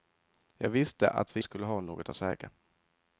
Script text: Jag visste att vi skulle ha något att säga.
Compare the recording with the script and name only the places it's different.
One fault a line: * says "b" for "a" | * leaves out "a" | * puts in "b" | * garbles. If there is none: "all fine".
all fine